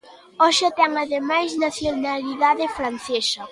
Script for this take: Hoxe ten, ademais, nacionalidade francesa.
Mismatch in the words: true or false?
false